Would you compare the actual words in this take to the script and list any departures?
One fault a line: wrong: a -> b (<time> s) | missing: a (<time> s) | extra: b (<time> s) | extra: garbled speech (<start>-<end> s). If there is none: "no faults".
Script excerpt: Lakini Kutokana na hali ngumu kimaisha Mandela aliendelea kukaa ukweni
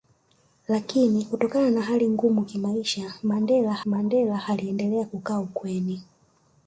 extra: Mandela (3.8 s)